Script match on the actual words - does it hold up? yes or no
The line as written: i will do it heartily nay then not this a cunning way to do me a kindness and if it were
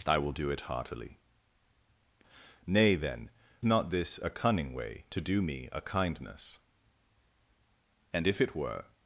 yes